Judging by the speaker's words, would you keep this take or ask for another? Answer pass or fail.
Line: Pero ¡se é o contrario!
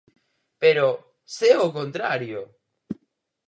pass